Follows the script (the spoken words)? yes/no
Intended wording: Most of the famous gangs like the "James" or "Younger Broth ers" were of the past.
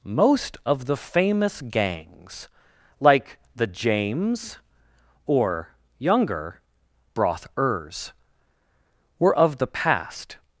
yes